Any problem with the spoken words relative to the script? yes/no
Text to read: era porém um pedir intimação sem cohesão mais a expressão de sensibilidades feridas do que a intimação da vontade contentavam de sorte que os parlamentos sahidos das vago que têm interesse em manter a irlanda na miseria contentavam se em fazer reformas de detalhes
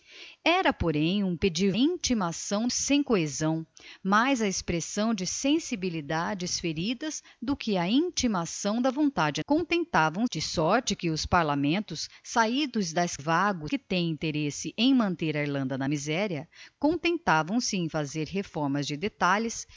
no